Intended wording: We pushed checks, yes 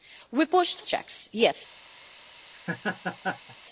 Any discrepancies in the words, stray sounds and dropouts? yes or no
yes